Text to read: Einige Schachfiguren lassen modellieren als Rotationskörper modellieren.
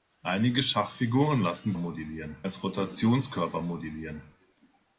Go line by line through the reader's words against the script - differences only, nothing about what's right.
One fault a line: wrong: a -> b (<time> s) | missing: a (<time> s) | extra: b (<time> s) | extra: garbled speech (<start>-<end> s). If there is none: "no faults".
no faults